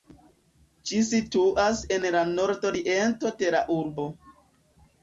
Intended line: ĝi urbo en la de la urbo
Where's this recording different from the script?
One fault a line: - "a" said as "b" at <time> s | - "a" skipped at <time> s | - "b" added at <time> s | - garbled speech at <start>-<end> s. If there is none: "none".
- "urbo" said as "situas" at 1.1 s
- "nordoriento" added at 2.3 s